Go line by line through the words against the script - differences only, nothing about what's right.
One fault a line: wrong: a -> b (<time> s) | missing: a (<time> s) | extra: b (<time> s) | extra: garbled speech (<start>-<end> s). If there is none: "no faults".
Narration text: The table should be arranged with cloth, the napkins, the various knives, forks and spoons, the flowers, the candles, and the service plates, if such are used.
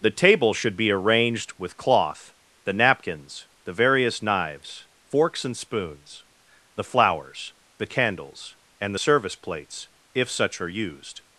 no faults